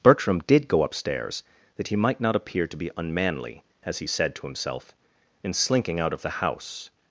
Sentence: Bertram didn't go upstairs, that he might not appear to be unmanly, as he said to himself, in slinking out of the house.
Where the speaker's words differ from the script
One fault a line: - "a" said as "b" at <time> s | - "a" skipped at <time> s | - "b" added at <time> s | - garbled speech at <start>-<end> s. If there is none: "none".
- "didn't" said as "did" at 0.5 s